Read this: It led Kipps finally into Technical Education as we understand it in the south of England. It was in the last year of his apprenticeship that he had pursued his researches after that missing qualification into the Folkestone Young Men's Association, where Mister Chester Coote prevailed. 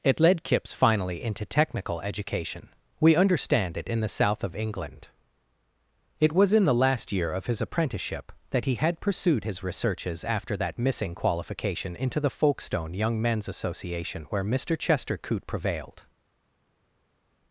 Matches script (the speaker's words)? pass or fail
fail